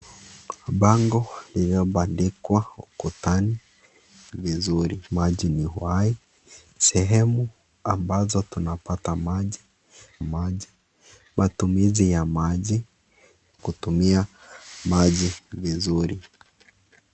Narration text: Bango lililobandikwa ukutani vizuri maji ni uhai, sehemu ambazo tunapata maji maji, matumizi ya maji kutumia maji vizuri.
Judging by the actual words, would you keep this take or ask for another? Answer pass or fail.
pass